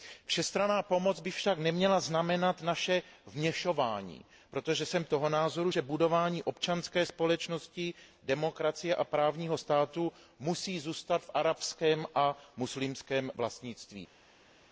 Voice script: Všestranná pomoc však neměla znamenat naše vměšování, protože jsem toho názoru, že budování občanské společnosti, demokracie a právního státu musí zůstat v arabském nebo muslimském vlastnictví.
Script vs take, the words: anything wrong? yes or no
yes